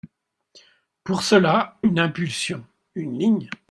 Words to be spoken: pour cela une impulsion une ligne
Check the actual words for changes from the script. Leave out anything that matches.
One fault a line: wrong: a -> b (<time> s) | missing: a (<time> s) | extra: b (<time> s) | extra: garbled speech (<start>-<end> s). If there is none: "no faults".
no faults